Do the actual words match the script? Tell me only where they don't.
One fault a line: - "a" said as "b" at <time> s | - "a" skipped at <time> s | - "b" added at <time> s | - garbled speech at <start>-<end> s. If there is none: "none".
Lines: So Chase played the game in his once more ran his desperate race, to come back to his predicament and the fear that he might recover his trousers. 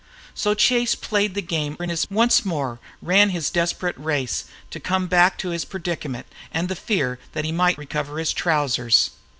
none